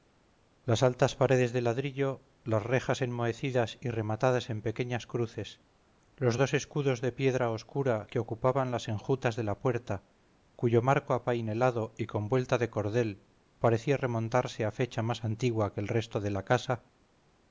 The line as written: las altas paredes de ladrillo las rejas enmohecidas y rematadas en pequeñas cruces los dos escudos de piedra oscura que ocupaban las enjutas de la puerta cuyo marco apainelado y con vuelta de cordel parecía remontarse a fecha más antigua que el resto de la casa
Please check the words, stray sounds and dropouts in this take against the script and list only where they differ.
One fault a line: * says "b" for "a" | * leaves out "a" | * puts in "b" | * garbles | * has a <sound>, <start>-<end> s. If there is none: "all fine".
all fine